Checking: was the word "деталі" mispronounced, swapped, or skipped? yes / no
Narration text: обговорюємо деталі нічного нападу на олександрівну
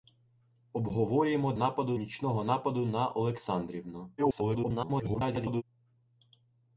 yes